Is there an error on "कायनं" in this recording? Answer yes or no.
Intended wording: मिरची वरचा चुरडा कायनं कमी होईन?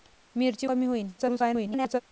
yes